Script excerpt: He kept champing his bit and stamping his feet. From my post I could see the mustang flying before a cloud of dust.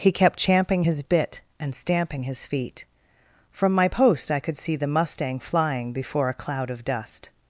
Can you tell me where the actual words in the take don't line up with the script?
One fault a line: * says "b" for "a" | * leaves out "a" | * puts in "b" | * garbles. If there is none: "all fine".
all fine